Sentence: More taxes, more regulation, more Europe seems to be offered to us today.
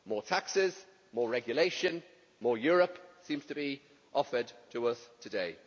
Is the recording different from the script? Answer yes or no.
no